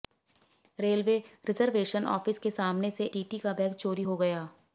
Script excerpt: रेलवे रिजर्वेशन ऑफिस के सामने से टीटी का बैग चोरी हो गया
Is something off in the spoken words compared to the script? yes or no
no